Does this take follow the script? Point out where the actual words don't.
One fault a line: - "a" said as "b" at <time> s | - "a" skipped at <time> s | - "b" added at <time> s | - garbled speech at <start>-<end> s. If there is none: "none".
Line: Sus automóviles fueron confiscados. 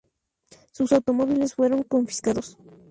none